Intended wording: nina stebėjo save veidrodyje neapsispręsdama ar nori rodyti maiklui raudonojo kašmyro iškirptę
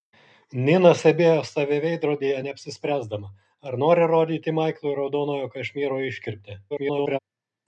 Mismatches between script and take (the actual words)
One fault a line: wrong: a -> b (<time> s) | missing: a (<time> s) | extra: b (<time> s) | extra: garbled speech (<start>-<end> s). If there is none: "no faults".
extra: garbled speech (6.7-7.2 s)